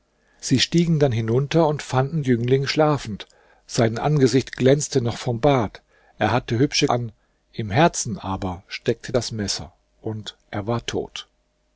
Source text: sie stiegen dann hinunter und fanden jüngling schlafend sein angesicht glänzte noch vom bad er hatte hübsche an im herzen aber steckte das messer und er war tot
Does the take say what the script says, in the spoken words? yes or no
yes